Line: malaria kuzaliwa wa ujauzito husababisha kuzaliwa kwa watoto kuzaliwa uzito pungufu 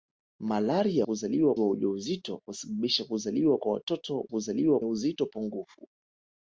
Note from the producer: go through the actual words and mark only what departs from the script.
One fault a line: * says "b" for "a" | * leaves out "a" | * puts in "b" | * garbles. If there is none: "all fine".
all fine